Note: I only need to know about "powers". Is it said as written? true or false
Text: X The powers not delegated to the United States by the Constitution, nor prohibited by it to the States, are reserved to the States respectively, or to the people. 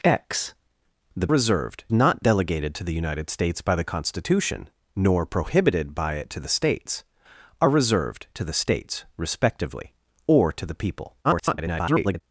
false